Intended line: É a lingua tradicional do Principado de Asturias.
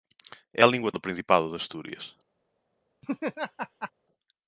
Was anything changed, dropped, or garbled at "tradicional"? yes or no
yes